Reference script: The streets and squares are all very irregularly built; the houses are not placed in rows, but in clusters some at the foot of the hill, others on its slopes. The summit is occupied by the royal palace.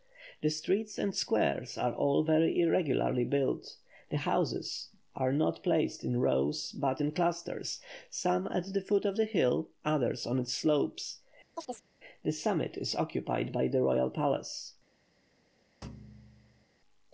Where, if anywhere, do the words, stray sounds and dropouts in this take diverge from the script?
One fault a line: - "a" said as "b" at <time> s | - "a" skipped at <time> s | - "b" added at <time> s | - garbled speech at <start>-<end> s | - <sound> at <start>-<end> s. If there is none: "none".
- chirp at 11.5-11.9 s
- thud at 15.8-16.7 s